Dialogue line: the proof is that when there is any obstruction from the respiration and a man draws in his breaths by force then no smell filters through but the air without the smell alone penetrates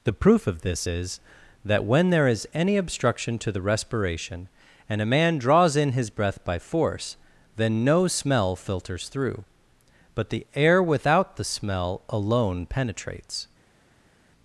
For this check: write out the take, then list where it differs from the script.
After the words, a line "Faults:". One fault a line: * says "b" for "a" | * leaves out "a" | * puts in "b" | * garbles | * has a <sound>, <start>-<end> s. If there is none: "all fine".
the proof of this is that when there is any obstruction to the respiration and a man draws in his breath by force then no smell filters through but the air without the smell alone penetrates
Faults:
* puts in "of this"
* says "to" for "from"
* says "breath" for "breaths"